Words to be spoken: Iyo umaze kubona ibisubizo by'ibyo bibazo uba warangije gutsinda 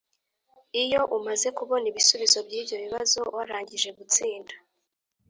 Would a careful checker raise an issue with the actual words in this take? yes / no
yes